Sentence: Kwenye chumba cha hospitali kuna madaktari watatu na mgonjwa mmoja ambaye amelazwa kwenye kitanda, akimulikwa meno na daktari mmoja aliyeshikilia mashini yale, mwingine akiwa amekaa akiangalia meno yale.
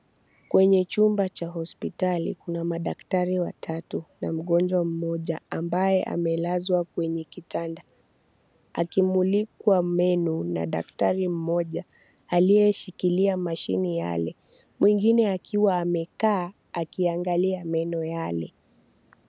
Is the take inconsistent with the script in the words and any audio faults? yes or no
no